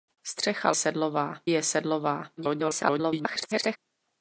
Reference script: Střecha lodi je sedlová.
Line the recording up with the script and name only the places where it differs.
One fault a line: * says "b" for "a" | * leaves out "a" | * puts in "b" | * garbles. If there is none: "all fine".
* says "sedlová" for "lodi"
* garbles